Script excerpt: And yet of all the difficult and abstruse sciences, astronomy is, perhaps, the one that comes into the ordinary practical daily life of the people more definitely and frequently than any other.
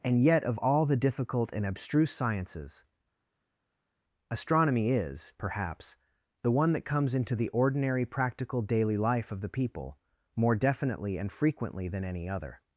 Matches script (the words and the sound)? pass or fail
pass